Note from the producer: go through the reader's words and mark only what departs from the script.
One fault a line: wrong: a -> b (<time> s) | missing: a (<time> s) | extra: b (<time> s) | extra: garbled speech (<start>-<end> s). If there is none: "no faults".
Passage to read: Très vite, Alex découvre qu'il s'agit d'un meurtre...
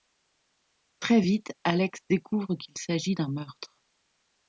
no faults